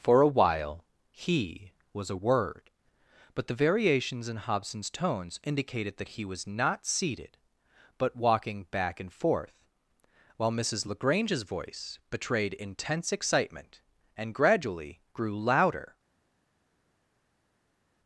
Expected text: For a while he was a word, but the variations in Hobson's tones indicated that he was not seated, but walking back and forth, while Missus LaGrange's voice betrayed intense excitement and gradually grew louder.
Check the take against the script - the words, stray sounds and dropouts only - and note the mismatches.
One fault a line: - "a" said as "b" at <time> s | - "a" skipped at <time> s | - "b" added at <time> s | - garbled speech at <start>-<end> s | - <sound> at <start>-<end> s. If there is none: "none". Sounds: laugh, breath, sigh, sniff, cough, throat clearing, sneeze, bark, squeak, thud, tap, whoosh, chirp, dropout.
none